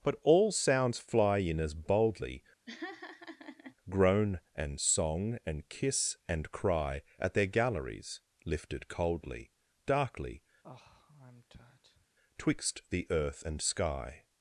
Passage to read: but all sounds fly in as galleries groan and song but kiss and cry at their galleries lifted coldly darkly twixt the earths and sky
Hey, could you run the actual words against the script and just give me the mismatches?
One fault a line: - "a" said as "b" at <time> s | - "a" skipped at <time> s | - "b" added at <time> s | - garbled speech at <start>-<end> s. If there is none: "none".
- "galleries" said as "boldly" at 1.8 s
- "but" said as "and" at 5.5 s
- "earths" said as "earth" at 13.1 s